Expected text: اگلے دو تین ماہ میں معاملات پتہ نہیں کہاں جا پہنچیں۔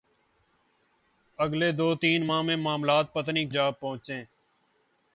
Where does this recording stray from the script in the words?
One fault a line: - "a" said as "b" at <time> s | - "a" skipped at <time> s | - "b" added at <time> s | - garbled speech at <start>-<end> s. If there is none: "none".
- "کہاں" skipped at 3.5 s